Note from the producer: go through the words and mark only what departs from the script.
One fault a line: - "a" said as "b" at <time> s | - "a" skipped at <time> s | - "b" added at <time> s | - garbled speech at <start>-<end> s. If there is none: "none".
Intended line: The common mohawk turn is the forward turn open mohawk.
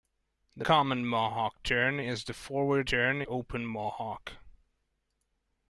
none